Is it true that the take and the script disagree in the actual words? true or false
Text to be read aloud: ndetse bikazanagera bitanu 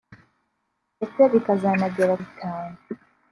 false